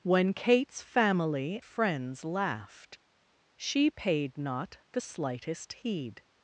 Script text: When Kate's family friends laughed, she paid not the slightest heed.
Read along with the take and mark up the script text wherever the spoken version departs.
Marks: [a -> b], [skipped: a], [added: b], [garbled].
When Kate's family friends laughed, she paid not the slightest heed.